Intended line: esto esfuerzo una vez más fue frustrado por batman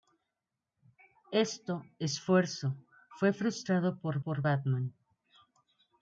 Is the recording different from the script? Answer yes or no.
yes